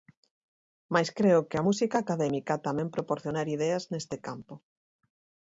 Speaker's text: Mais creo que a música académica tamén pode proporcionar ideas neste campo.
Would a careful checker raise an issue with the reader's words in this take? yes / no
yes